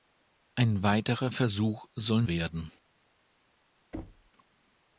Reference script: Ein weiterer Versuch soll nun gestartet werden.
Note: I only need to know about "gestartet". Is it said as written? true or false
false